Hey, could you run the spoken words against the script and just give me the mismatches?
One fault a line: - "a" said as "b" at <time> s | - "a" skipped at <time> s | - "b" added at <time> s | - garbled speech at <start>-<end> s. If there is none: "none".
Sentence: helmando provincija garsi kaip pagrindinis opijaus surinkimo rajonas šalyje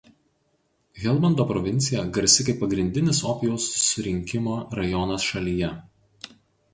none